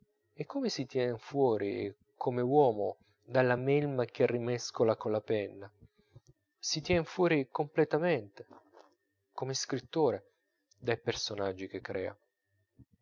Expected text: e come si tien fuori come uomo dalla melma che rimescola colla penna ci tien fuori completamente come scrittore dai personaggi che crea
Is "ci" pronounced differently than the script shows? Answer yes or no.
yes